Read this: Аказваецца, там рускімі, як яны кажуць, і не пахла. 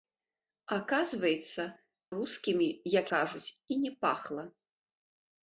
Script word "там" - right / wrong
wrong